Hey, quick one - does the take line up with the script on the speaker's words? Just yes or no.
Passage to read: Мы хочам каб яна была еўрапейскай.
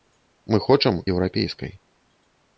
no